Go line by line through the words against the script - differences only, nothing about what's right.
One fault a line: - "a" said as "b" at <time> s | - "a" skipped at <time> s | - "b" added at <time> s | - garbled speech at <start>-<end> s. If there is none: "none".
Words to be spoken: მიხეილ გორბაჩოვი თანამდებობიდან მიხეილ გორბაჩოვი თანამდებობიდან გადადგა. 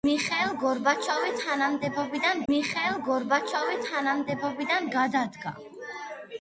none